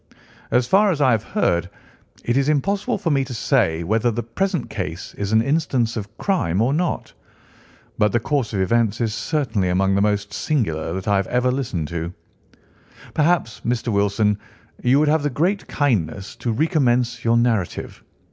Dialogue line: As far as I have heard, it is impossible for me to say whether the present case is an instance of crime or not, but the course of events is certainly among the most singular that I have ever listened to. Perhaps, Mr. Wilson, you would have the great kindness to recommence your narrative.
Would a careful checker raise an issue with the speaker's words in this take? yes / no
no